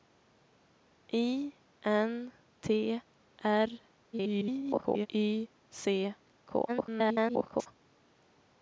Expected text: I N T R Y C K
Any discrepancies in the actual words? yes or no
yes